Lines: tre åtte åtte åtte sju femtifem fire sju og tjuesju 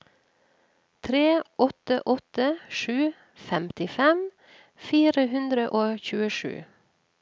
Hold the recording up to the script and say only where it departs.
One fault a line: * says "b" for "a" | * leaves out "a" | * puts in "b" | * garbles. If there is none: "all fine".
* leaves out "åtte"
* says "hundre" for "sju"